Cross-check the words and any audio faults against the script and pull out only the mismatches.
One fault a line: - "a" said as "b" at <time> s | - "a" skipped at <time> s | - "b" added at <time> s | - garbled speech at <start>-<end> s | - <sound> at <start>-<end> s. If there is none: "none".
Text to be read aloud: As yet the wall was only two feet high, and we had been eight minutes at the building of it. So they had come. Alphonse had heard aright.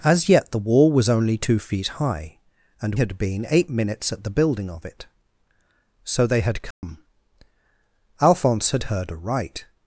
- "we" skipped at 3.0 s
- dropout at 6.7-6.8 s